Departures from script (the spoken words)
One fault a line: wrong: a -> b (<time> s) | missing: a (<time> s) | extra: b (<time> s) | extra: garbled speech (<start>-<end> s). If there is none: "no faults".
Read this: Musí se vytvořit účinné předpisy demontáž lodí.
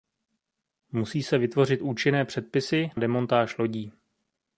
no faults